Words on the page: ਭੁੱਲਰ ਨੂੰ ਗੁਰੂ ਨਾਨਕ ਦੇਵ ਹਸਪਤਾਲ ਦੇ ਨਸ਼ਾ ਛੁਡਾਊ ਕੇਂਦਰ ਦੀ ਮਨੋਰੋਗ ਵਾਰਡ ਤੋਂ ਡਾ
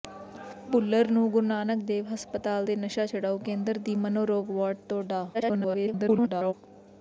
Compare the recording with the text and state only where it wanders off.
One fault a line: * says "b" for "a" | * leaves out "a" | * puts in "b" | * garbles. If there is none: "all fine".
* garbles